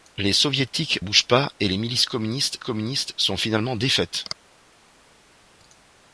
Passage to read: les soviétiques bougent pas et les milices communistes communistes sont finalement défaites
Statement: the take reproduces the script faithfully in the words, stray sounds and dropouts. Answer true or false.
true